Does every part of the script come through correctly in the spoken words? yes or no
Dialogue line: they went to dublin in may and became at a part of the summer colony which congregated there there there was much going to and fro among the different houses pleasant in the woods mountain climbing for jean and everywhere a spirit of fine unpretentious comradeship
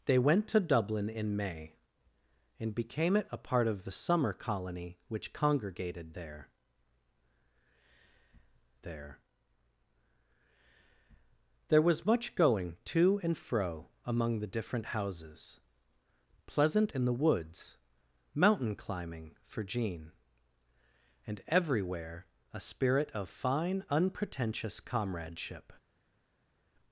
yes